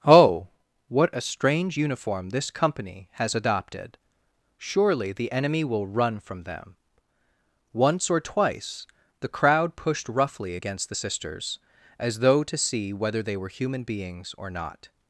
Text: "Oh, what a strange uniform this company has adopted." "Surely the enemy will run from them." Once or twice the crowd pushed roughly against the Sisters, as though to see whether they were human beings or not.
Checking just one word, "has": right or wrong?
right